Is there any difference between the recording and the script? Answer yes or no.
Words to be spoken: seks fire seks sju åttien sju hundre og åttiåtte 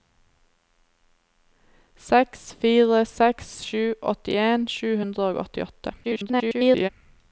yes